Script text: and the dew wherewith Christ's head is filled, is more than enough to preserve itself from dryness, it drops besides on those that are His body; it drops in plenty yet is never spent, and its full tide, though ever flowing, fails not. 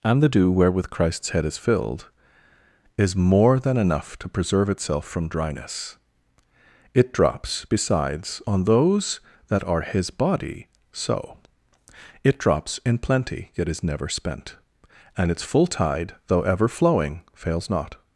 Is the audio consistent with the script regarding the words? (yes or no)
no